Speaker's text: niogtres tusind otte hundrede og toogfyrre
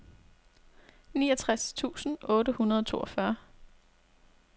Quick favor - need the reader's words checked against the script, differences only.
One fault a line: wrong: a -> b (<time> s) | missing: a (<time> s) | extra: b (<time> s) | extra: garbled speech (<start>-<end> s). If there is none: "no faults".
no faults